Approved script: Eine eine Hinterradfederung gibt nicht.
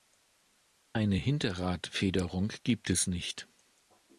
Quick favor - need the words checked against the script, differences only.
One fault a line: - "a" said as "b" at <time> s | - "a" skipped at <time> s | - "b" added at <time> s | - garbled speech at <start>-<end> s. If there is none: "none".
- "eine" skipped at 1.2 s
- "es" added at 2.9 s